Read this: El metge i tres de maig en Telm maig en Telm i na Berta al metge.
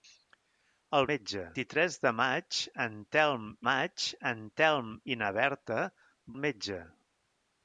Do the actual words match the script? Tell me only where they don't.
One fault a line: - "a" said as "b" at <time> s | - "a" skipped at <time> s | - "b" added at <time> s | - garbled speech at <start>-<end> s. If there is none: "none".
none